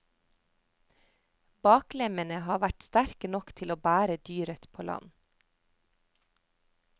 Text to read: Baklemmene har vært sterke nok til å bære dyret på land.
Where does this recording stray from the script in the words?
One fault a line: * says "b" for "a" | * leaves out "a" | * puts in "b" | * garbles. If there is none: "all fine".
all fine